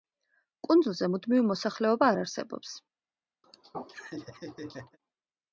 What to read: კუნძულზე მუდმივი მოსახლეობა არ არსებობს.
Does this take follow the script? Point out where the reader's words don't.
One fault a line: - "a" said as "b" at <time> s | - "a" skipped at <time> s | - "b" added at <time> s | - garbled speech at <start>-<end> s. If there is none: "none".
none